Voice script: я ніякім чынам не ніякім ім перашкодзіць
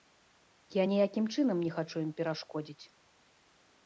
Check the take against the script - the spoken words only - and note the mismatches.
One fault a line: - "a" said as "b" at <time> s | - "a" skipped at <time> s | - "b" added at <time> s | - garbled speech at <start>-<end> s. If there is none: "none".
- "ніякім" said as "хачу" at 1.8 s